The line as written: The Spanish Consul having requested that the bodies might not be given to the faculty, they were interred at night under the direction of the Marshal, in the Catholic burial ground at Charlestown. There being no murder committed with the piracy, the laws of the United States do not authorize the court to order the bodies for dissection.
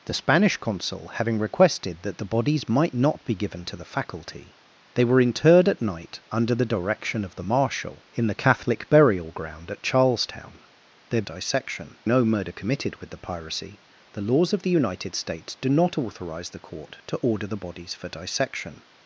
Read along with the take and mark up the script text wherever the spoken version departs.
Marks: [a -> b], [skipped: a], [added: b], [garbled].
The Spanish Consul having requested that the bodies might not be given to the faculty, they were interred at night under the direction of the Marshal, in the Catholic burial ground at Charlestown. There [being -> dissection] no murder committed with the piracy, the laws of the United States do not authorize the court to order the bodies for dissection.